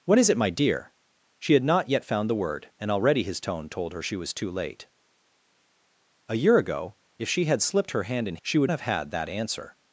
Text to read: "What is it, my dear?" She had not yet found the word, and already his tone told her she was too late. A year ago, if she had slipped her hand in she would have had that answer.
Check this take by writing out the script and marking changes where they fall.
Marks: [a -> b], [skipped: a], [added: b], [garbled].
"What is it, my dear?" She had not yet found the word, and already his tone told her she was too late. A year ago, if she had slipped her hand in she would have had that answer.